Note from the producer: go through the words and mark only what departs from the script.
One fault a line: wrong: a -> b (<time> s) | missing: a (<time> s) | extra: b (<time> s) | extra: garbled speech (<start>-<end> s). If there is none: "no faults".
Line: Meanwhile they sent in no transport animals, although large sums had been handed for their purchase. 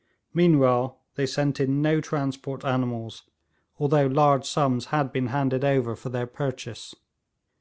extra: over (5.6 s)